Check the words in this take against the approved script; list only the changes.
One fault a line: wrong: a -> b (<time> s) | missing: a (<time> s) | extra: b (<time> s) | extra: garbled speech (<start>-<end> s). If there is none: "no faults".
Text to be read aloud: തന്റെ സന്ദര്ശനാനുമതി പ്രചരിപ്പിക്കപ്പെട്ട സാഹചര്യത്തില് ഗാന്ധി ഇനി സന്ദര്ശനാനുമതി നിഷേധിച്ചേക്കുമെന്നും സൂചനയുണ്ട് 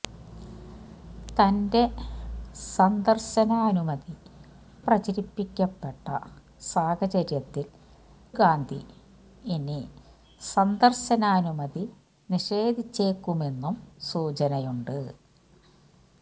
no faults